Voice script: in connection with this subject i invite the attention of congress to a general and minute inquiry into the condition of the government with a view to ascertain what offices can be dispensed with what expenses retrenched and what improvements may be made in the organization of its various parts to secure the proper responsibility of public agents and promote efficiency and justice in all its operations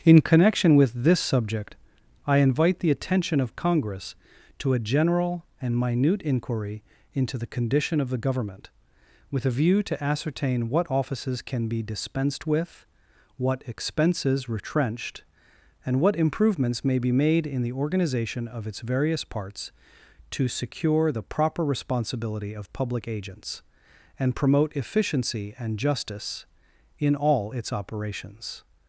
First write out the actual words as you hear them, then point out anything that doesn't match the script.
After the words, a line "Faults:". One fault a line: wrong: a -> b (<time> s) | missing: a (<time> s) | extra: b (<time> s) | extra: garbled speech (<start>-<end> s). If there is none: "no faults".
in connection with this subject i invite the attention of congress to a general and minute inquiry into the condition of the government with a view to ascertain what offices can be dispensed with what expenses retrenched and what improvements may be made in the organization of its various parts to secure the proper responsibility of public agents and promote efficiency and justice in all its operations
Faults:
no faults